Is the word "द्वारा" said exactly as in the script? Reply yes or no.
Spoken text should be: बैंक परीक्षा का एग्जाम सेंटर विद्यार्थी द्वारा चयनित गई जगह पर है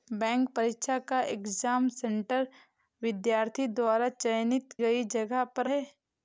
yes